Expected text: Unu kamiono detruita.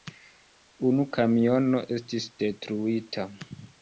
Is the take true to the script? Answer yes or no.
no